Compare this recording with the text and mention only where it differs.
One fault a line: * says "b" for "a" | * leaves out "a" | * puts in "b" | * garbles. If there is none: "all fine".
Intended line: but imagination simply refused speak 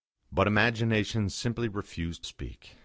all fine